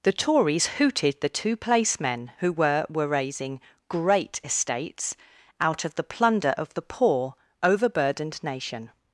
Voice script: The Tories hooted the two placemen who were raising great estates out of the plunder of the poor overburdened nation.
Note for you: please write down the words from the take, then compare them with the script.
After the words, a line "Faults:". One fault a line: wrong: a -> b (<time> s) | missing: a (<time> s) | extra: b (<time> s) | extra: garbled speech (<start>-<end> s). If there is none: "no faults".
The Tories hooted the two placemen who were were raising great estates out of the plunder of the poor overburdened nation.
Faults:
extra: were (2.9 s)